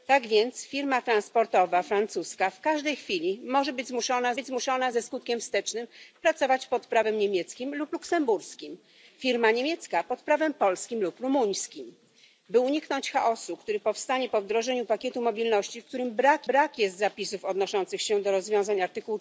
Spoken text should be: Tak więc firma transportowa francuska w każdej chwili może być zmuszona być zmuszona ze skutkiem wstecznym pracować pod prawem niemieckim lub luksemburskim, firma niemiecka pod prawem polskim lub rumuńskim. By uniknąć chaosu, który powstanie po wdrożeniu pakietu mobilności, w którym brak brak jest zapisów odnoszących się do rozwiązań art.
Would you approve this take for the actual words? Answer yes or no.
yes